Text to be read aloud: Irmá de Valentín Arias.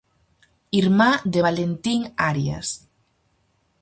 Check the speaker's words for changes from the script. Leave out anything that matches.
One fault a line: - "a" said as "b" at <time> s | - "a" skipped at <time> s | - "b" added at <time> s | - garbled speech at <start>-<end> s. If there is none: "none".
none